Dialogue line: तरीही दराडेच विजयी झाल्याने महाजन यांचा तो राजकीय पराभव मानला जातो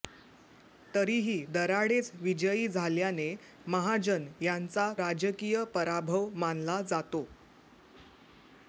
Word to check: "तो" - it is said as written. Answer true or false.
false